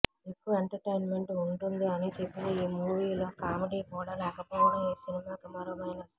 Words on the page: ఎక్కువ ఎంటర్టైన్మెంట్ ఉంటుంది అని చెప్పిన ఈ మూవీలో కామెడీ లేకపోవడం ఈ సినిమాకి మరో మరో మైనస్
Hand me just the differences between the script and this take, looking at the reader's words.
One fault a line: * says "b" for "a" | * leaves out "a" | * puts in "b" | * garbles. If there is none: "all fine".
* puts in "కూడా"
* leaves out "మరో"